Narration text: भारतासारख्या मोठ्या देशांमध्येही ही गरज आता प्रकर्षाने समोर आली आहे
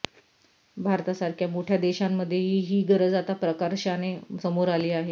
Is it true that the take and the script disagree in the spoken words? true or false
false